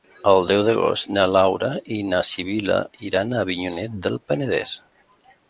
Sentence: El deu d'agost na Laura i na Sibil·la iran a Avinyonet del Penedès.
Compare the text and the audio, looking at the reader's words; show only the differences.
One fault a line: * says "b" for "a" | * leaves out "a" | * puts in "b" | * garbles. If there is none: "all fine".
all fine